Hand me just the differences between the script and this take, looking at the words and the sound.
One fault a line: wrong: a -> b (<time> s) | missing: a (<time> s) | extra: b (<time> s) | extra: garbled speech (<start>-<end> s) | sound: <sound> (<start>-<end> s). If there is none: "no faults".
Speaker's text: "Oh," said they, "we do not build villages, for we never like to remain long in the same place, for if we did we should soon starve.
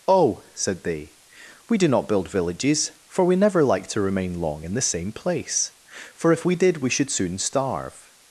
no faults